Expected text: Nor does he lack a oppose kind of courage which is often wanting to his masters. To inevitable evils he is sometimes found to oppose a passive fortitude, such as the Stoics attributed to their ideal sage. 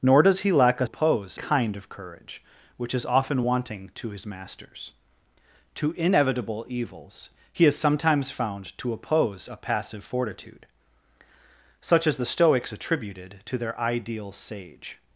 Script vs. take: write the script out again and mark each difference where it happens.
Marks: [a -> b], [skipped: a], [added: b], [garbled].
Nor does he lack a oppose kind of courage which is often wanting to his masters. To inevitable evils he is sometimes found to oppose a passive fortitude, such as the Stoics attributed to their ideal sage.